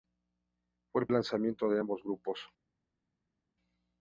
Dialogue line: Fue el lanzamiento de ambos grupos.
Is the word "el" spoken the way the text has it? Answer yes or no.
yes